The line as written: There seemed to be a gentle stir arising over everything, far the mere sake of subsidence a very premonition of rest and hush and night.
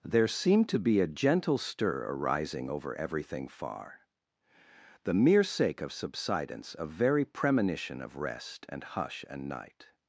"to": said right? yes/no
yes